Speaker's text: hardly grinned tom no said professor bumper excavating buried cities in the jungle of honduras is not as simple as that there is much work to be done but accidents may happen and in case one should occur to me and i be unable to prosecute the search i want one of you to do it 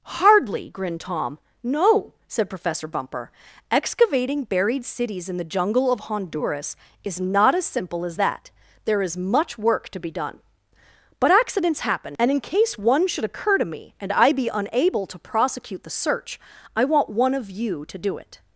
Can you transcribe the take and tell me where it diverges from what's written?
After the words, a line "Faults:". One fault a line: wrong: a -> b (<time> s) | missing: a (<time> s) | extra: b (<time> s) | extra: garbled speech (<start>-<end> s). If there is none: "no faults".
hardly grinned tom no said professor bumper excavating buried cities in the jungle of honduras is not as simple as that there is much work to be done but accidents happen and in case one should occur to me and i be unable to prosecute the search i want one of you to do it
Faults:
missing: may (11.8 s)